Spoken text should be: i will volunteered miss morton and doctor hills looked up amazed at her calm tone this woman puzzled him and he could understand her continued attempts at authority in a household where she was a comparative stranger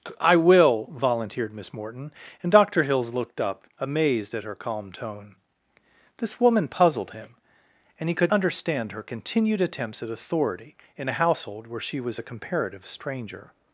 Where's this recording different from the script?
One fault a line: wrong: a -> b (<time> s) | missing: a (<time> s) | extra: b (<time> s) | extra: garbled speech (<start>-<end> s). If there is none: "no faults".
no faults